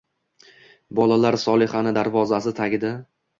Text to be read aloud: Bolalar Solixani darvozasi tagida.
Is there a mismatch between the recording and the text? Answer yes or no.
no